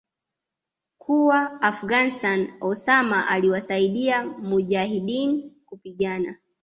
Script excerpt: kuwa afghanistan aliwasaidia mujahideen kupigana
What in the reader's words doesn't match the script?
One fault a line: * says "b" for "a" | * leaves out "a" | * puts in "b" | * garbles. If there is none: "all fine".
* puts in "osama"